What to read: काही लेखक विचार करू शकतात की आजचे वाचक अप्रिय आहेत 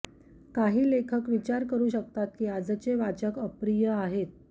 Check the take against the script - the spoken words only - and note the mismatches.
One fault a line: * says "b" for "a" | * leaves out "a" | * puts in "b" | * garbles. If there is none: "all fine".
all fine